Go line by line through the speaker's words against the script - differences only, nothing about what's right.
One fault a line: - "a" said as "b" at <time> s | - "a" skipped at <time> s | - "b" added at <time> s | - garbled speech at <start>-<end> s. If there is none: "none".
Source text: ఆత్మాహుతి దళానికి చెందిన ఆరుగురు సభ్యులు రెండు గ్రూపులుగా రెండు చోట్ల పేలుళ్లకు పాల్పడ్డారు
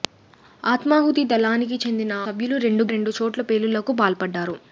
- "ఆరుగురు" skipped at 2.1 s
- "గ్రూపులుగా" skipped at 2.8 s